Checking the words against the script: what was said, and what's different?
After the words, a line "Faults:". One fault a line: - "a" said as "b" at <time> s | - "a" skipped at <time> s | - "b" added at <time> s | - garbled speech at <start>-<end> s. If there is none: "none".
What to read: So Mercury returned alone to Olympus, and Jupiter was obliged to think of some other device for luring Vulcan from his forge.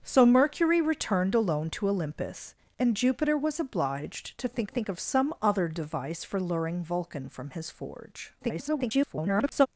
So Mercury returned alone to Olympus, and Jupiter was obliged to think think of some other device for luring Vulcan from his forge. [garbled]
Faults:
- "think" added at 4.7 s
- garbled speech at 8.4-9.7 s